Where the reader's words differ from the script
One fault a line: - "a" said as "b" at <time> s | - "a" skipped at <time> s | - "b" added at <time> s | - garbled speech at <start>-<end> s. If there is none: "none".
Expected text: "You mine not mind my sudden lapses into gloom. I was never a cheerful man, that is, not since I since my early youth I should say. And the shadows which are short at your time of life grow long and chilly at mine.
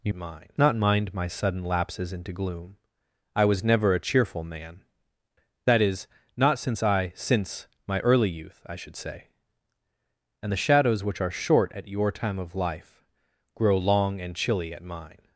none